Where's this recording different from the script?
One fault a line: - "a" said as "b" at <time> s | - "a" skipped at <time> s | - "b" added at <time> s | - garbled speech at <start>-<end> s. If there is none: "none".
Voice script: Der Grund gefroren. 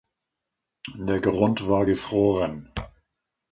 - "war" added at 1.7 s